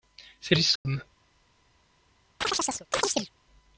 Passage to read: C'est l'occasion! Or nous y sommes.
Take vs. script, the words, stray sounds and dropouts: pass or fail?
fail